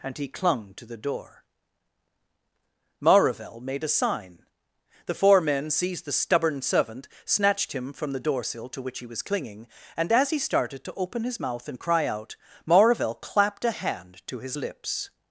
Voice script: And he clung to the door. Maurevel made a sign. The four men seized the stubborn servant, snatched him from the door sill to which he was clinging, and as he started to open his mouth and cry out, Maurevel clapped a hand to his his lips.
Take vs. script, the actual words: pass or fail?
fail